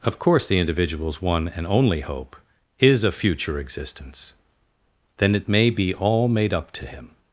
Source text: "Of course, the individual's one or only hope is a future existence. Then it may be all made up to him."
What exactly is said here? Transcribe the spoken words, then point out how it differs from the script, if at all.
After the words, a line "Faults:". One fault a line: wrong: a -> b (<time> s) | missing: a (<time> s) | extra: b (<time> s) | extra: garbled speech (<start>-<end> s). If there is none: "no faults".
"Of course, the individual's one and only hope is a future existence. Then it may be all made up to him."
Faults:
wrong: or -> and (1.5 s)